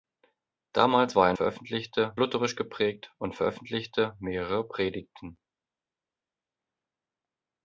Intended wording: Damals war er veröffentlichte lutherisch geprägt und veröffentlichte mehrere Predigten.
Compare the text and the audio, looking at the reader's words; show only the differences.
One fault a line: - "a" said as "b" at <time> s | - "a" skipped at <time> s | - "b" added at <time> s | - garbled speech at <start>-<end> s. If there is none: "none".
none